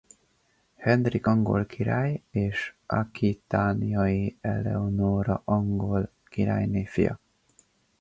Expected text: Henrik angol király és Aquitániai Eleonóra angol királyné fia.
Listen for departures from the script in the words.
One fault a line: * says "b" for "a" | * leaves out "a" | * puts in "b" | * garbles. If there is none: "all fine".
all fine